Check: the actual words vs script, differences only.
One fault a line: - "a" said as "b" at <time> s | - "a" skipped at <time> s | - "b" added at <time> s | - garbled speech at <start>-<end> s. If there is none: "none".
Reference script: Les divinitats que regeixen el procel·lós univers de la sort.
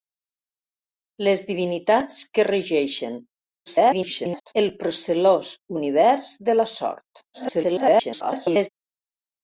- garbled speech at 3.7-4.5 s
- garbled speech at 7.3-8.7 s